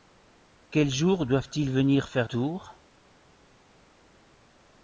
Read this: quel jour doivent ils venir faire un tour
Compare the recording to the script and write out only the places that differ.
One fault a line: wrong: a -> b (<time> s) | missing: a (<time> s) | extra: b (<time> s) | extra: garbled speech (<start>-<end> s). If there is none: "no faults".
missing: un (2.3 s)